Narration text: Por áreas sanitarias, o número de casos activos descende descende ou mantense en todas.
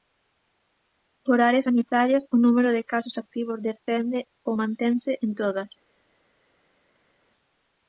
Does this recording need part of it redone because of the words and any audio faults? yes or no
yes